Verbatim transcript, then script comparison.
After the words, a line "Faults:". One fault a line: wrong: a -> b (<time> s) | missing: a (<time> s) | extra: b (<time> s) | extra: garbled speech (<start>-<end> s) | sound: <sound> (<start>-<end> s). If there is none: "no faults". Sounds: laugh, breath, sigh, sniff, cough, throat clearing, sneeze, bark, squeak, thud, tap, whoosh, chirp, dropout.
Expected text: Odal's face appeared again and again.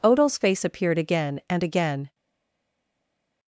Odal's face appeared again and again.
Faults:
no faults